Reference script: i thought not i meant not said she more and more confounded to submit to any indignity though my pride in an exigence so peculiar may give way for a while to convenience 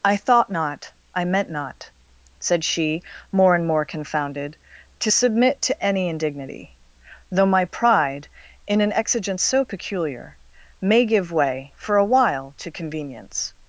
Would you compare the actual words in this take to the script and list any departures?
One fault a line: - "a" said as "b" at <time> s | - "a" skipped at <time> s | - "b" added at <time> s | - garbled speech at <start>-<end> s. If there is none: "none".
none